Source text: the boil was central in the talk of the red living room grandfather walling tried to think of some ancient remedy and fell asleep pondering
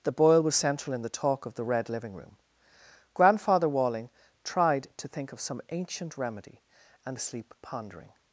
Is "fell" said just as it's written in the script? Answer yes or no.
no